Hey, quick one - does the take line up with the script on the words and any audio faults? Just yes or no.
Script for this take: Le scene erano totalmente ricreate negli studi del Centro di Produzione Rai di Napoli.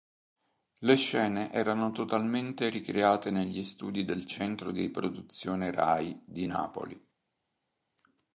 yes